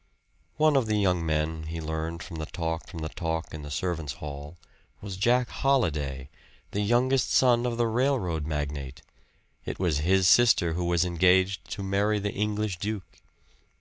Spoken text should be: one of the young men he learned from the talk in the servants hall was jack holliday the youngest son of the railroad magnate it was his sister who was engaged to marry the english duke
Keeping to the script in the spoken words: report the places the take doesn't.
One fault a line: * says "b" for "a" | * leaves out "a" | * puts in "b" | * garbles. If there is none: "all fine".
* puts in "from the talk"